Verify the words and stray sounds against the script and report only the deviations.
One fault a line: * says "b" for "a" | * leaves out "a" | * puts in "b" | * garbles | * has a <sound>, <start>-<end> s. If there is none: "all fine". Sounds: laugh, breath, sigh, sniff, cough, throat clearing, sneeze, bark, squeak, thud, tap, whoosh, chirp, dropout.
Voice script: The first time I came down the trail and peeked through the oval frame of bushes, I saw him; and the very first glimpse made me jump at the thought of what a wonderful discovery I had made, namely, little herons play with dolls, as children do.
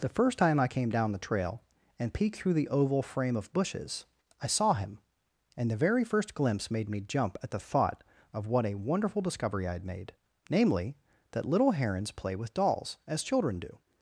* puts in "that"